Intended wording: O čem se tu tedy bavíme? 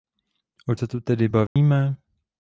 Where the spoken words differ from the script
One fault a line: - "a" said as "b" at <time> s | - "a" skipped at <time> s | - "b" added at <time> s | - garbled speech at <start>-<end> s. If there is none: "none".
- "čem" skipped at 0.8 s